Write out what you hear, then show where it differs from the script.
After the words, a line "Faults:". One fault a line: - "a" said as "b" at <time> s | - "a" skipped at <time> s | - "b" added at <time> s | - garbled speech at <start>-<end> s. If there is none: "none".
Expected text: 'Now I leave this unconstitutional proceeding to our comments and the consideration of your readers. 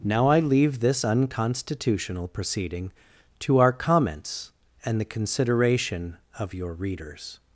'Now I leave this unconstitutional proceeding to our comments and the consideration of your readers.
Faults:
none